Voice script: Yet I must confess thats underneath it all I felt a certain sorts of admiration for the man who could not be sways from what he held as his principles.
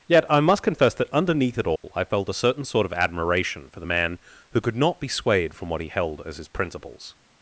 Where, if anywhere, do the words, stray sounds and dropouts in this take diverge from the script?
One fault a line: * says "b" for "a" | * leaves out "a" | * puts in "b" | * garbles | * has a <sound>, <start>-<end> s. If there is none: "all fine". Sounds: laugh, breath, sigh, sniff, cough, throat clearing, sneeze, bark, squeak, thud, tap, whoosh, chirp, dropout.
* says "that" for "thats"
* has a dropout, 1.8-1.8 s
* says "sort" for "sorts"
* says "swayed" for "sways"